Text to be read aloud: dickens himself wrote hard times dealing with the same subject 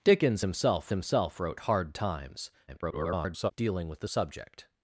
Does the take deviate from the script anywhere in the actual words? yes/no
yes